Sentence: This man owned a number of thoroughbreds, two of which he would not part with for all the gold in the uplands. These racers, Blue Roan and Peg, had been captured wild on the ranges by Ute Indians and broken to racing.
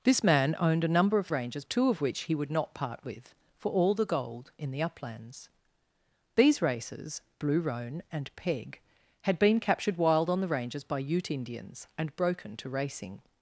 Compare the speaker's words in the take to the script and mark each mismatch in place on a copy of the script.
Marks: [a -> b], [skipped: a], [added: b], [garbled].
This man owned a number of [thoroughbreds, -> ranges] two of which he would not part with for all the gold in the uplands. These racers, Blue Roan and Peg, had been captured wild on the ranges by Ute Indians and broken to racing.